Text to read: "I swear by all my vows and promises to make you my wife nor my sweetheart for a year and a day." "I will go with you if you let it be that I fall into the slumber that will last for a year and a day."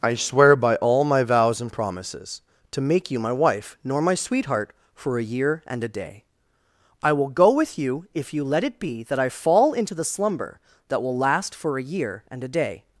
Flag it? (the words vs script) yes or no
no